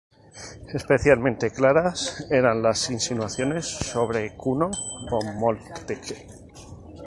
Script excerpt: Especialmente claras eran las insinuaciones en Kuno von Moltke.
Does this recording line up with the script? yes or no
no